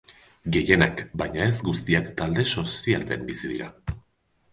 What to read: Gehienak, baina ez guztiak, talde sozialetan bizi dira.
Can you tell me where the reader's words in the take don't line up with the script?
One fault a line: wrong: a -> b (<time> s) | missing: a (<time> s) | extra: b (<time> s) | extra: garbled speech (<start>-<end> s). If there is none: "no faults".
no faults